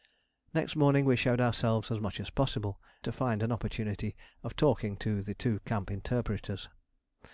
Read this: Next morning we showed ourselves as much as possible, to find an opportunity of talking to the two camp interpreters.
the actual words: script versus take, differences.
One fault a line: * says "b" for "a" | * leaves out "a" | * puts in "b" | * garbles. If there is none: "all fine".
all fine